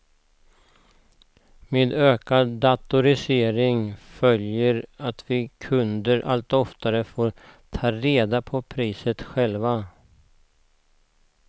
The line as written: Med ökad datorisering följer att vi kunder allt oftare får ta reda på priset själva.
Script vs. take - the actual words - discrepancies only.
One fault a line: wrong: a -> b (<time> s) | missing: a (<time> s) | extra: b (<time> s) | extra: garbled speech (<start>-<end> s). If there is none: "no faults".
no faults